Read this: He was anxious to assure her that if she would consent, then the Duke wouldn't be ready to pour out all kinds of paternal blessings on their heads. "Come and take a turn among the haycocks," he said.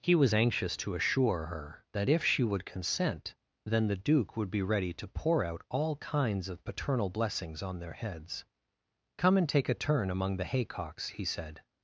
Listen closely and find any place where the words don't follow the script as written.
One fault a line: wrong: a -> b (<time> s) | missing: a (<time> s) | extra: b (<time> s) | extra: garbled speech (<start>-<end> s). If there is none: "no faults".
wrong: wouldn't -> would (4.3 s)